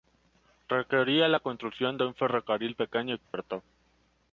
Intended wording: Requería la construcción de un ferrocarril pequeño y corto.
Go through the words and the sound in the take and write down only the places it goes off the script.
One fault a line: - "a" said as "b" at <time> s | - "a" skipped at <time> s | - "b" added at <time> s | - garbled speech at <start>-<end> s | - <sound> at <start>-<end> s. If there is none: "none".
- dropout at 3.2-3.3 s